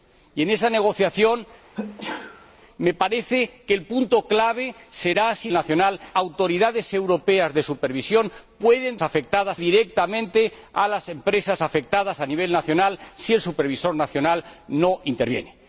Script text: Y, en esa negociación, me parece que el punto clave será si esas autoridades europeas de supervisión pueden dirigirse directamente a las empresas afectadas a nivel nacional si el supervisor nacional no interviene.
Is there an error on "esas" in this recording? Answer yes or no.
yes